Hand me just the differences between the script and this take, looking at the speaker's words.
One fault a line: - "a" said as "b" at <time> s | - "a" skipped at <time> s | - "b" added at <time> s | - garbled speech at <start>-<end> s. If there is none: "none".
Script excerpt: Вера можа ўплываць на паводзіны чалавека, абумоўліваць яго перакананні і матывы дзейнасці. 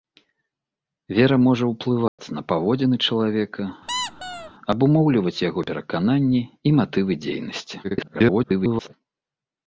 - garbled speech at 7.8-8.9 s